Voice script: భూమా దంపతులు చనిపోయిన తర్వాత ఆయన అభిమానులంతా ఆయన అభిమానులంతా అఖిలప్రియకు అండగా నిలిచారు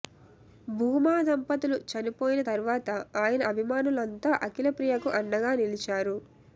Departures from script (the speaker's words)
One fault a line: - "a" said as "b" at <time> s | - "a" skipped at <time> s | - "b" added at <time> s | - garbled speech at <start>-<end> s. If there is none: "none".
- "ఆయన అభిమానులంతా" skipped at 4.3 s